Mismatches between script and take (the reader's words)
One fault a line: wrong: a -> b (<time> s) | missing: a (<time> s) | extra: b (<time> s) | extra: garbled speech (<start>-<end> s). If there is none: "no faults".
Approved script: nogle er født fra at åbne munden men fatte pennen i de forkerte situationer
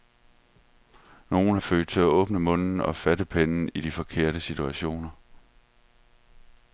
wrong: fra -> til (1.9 s)
wrong: men -> og (2.8 s)